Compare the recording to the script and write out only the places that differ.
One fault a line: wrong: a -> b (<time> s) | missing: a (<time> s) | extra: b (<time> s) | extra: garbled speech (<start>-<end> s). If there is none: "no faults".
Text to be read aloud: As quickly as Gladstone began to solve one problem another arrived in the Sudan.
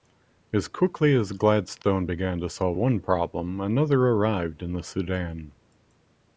no faults